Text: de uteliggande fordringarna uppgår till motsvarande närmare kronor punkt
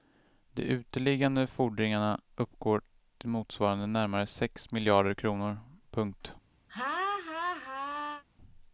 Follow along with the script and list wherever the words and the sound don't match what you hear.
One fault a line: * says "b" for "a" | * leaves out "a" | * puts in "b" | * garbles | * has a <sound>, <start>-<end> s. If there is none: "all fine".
* puts in "sex miljarder"
* has a laugh, 6.7-8.2 s